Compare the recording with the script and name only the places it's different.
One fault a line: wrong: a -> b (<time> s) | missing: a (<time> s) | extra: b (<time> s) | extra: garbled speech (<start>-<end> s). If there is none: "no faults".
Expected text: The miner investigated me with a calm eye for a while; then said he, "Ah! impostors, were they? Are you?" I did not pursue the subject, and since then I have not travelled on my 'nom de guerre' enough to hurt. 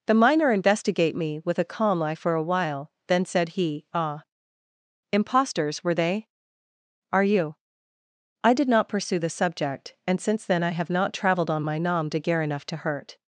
wrong: investigated -> investigate (0.5 s)